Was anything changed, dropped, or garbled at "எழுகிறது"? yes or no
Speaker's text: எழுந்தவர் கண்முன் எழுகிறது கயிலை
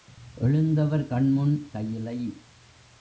yes